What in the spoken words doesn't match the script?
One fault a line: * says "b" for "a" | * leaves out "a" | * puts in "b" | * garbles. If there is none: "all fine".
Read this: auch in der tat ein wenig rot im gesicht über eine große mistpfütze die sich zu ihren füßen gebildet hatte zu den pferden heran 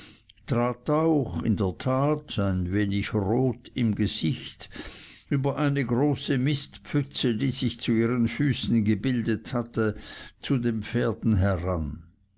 all fine